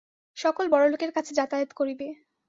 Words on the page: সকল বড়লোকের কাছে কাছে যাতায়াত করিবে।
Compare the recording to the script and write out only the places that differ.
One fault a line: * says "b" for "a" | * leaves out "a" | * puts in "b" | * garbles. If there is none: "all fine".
* leaves out "কাছে"